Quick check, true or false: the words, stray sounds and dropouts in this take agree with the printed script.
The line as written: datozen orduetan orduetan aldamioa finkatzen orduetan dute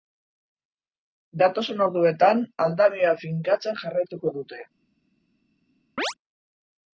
false